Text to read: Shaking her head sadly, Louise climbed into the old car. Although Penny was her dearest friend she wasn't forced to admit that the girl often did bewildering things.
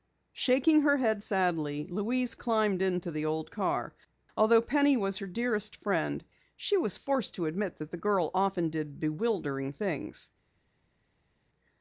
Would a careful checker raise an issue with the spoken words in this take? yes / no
yes